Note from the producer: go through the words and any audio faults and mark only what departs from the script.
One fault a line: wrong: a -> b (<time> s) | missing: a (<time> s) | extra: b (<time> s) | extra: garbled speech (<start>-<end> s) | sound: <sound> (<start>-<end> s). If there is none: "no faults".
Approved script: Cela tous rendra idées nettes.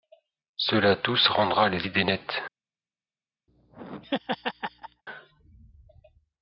extra: les (1.7 s)
sound: laugh (3.5-5.0 s)